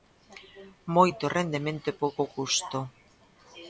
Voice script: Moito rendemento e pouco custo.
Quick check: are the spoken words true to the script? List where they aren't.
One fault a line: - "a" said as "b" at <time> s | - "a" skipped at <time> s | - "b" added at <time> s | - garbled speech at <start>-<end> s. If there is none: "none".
none